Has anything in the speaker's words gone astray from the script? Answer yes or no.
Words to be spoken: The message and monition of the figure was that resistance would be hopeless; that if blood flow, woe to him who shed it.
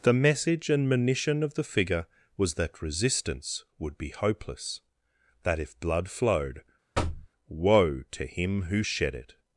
yes